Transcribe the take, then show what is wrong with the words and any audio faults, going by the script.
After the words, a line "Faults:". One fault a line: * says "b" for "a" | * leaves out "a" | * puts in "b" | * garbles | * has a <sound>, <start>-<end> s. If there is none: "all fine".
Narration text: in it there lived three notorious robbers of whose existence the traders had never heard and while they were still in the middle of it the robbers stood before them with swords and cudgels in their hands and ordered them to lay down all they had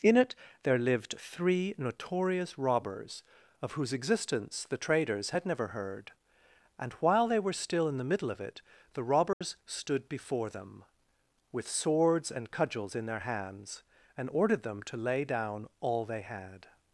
in it there lived three notorious robbers of whose existence the traders had never heard and while they were still in the middle of it the robbers stood before them with swords and cudgels in their hands and ordered them to lay down all they had
Faults:
* has a dropout, 9.3-9.4 s